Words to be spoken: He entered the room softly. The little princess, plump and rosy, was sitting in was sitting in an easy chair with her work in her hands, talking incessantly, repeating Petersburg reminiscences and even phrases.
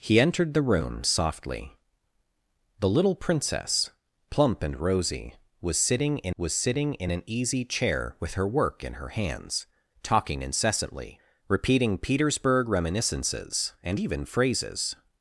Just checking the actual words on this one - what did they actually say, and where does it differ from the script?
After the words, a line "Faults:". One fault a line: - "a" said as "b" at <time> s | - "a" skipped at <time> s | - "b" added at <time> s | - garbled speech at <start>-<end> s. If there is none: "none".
He entered the room softly. The little princess, plump and rosy, was sitting in was sitting in an easy chair with her work in her hands, talking incessantly, repeating Petersburg reminiscences and even phrases.
Faults:
none